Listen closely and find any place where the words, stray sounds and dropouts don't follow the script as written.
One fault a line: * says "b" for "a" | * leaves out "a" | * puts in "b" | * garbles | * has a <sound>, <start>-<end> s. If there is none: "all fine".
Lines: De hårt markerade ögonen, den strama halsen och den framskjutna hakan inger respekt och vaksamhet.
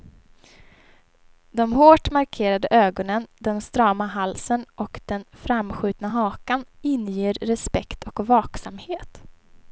all fine